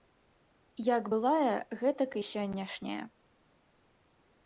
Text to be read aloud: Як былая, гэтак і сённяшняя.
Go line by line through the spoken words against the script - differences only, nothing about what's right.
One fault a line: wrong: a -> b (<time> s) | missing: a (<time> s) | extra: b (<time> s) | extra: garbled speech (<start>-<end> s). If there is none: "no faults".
no faults